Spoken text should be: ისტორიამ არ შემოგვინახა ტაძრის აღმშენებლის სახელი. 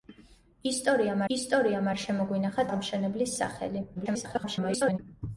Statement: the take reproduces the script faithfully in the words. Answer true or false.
false